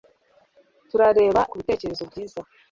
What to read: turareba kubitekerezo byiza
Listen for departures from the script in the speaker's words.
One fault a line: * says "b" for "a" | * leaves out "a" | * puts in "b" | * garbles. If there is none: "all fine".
all fine